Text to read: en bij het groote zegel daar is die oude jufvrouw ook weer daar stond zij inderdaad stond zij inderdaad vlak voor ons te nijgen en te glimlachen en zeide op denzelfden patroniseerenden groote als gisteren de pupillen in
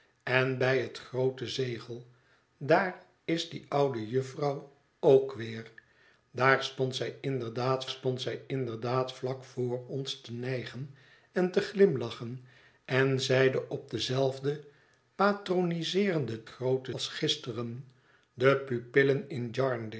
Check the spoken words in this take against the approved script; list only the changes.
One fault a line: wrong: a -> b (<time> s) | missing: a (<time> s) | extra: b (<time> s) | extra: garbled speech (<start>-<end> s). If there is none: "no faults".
no faults